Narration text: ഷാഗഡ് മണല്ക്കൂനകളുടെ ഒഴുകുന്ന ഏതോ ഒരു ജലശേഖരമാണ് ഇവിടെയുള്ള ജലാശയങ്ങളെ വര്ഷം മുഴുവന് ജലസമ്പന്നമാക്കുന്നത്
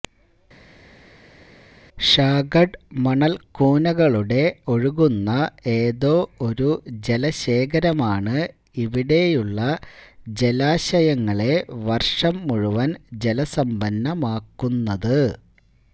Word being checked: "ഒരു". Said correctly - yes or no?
yes